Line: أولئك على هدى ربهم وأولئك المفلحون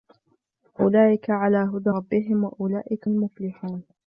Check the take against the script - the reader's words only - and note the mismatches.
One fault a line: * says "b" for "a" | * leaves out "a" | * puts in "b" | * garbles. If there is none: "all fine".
all fine